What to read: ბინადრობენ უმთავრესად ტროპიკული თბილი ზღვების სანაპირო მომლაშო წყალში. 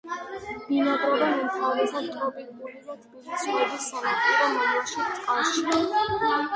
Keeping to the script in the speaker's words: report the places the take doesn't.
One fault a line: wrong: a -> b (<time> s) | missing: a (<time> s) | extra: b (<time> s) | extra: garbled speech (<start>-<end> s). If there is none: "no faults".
extra: და (2.8 s)